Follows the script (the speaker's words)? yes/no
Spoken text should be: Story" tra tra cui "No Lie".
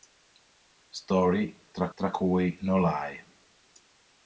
yes